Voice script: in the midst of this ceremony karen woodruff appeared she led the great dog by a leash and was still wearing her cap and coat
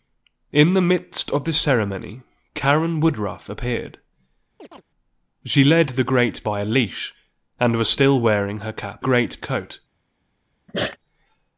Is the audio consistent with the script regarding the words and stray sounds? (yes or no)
no